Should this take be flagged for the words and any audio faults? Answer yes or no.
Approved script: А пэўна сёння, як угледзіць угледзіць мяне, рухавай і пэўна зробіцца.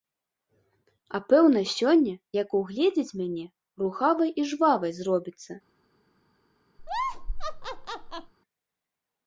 yes